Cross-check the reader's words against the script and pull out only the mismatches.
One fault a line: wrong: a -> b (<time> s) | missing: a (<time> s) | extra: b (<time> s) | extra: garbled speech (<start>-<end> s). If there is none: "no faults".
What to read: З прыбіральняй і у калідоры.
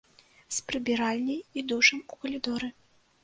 extra: душам (1.7 s)